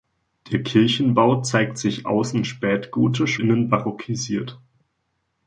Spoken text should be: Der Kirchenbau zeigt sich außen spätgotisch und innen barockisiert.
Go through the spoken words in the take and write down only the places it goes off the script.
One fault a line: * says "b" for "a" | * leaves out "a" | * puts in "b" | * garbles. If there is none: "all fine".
* leaves out "und"